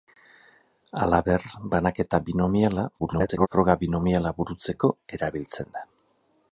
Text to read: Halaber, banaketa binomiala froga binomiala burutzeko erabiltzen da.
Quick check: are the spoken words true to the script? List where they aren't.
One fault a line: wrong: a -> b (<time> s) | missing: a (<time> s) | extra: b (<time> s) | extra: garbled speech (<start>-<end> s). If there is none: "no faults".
extra: garbled speech (3.0-3.5 s)